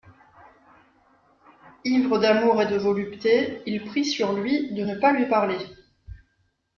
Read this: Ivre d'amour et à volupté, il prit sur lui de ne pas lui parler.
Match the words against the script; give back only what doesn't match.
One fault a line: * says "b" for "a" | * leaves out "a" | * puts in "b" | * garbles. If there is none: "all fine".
* says "de" for "à"